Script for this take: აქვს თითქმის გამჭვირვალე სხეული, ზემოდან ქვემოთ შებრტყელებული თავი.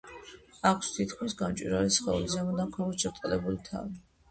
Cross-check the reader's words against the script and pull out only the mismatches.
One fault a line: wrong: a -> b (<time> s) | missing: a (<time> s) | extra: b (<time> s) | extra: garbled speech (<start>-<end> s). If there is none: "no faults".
no faults